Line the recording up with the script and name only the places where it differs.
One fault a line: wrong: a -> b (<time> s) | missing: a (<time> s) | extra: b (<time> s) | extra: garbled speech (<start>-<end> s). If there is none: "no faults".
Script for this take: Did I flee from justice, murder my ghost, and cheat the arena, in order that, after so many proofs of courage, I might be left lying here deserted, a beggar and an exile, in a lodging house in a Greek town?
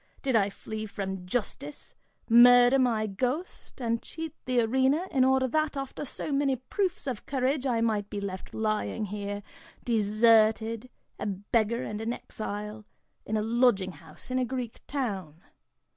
no faults